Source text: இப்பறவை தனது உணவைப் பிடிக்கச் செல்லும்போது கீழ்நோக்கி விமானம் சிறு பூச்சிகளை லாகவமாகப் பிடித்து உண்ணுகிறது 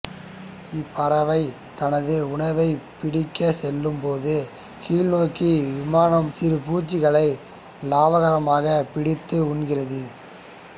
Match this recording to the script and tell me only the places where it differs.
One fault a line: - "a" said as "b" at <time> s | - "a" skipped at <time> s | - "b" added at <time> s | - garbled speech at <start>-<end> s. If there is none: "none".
none